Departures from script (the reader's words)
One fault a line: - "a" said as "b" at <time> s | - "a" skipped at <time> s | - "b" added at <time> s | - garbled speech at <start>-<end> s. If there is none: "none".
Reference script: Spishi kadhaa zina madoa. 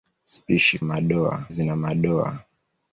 - "kadhaa" said as "madoa" at 0.8 s